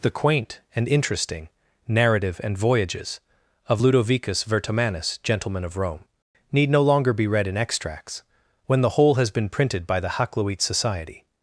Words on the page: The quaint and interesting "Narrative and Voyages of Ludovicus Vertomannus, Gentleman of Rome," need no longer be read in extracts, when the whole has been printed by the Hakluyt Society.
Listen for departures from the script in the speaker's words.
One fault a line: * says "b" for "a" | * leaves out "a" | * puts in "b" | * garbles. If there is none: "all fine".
all fine